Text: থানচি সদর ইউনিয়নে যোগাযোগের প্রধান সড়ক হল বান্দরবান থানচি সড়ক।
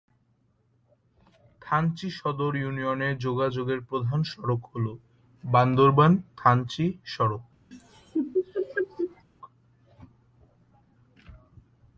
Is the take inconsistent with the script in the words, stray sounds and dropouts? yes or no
yes